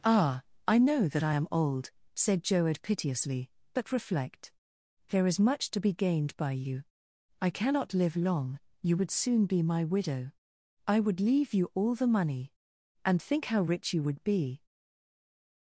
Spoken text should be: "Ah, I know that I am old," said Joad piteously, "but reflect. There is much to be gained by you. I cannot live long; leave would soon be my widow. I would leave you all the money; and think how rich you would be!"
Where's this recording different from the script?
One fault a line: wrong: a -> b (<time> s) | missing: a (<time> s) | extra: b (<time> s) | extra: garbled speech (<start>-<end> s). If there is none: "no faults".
wrong: leave -> you (8.8 s)